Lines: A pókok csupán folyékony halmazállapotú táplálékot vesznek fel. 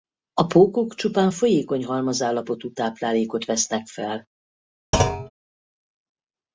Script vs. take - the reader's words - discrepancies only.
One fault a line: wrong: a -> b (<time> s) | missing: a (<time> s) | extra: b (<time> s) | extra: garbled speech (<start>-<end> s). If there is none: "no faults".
no faults